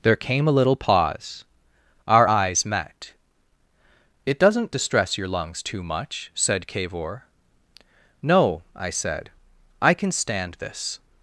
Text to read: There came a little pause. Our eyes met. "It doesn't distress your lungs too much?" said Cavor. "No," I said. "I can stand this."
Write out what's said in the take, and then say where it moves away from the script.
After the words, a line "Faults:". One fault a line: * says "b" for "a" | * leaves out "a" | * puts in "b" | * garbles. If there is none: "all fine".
There came a little pause. Our eyes met. "It doesn't distress your lungs too much?" said Cavor. "No," I said. "I can stand this."
Faults:
all fine